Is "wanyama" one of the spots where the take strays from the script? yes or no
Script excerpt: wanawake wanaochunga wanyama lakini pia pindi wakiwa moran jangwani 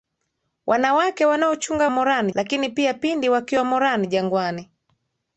yes